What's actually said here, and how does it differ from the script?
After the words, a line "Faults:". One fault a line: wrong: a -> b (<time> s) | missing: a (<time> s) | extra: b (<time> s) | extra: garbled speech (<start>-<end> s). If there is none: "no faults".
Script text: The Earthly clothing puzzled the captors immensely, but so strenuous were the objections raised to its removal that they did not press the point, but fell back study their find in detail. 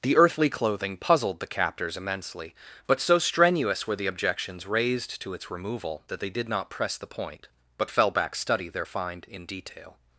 The Earthly clothing puzzled the captors immensely, but so strenuous were the objections raised to its removal that they did not press the point, but fell back study their find in detail.
Faults:
no faults